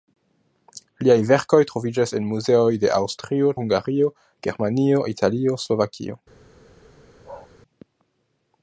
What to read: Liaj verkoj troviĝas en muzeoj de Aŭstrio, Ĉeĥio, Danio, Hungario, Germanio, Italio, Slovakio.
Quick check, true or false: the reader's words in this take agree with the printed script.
false